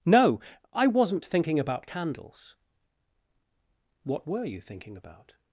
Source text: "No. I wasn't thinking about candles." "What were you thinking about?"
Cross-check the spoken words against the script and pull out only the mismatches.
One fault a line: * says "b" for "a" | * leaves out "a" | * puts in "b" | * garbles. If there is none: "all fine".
all fine